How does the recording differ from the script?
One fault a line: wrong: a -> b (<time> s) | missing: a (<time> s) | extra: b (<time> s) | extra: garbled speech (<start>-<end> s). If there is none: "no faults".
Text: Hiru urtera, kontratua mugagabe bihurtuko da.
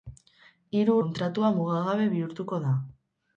missing: urtera (0.9 s)